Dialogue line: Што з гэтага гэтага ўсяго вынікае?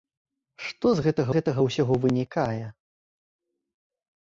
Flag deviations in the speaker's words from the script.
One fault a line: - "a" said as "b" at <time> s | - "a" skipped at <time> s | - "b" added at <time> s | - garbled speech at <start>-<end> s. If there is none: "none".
none